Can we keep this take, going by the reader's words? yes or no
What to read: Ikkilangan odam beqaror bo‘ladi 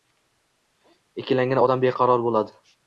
yes